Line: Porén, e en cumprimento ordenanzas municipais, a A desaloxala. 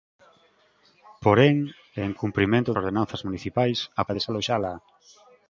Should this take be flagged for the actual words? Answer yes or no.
no